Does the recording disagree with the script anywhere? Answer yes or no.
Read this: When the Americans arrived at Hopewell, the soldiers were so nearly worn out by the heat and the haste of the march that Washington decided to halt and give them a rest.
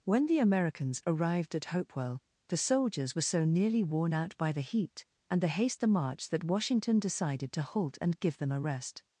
yes